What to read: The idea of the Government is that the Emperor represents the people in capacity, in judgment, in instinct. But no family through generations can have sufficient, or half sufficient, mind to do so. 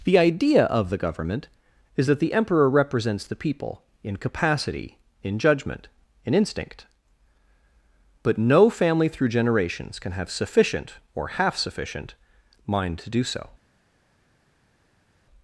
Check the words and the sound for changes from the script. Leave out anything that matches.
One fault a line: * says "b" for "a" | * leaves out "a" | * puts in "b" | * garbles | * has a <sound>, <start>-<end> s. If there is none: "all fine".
all fine